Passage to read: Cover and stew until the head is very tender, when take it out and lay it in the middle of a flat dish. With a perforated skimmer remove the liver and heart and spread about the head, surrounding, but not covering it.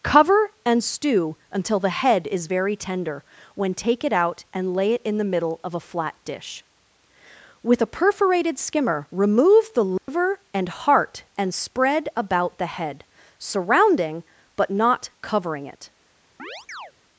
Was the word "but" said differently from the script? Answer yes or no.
no